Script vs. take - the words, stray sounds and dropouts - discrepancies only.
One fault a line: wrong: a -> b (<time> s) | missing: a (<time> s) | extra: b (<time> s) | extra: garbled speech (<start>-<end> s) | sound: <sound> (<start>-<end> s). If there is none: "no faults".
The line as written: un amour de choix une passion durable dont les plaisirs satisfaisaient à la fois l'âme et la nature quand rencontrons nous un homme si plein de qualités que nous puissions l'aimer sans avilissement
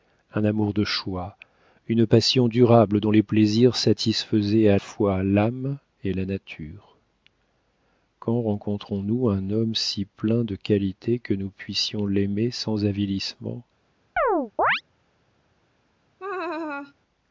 missing: la (4.8 s)
sound: chirp (14.2-14.8 s)
sound: laugh (16.2-16.9 s)